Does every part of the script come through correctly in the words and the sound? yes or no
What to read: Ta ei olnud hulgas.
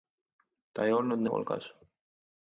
yes